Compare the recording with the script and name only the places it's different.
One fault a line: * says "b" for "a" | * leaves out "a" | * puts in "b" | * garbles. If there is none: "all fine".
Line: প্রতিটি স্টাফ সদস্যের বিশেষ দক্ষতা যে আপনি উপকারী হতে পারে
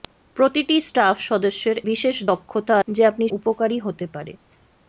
all fine